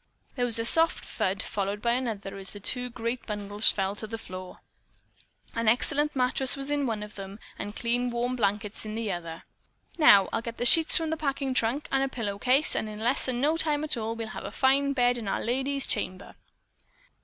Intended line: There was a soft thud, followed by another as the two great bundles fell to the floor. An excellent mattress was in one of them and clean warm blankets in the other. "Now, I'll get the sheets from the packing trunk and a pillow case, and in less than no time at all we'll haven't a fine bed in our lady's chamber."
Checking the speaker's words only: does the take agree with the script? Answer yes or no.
no